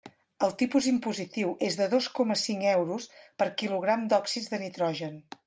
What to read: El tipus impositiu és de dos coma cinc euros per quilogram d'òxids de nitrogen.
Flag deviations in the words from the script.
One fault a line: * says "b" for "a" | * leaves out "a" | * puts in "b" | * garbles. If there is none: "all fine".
all fine